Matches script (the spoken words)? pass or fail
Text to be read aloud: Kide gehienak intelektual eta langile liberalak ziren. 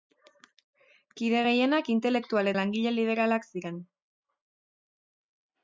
fail